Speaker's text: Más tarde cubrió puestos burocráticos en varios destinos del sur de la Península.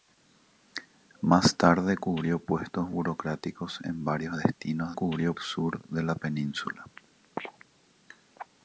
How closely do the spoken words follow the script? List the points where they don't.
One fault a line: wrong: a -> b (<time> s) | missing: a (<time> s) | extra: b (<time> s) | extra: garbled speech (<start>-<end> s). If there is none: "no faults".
wrong: del -> cubrió (4.9 s)